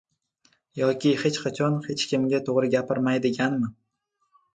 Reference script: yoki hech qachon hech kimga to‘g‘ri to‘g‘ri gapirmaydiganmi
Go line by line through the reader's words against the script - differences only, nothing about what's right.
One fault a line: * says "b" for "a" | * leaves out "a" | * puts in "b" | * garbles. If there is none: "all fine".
* leaves out "to‘g‘ri"